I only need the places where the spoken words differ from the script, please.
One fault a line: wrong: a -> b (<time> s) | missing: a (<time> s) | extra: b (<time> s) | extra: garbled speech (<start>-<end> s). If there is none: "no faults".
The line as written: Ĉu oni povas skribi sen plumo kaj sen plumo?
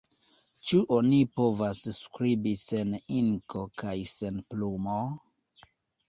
wrong: plumo -> inko (3.2 s)